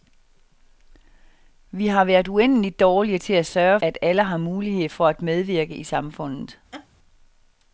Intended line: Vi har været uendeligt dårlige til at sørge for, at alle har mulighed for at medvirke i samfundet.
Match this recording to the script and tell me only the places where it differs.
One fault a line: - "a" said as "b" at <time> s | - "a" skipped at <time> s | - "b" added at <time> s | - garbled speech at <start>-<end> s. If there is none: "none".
- "for" skipped at 3.8 s